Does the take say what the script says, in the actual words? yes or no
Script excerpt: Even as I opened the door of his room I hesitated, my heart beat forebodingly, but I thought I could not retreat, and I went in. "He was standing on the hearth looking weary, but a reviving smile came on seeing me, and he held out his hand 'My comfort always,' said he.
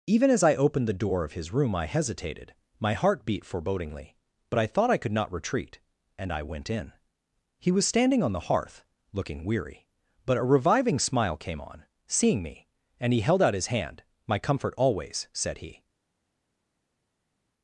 yes